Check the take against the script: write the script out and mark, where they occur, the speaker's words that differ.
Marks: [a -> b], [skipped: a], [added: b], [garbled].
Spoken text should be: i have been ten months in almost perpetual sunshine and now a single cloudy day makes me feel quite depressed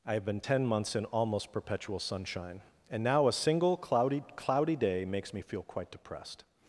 i have been ten months in almost perpetual sunshine and now a single cloudy [added: cloudy] day makes me feel quite depressed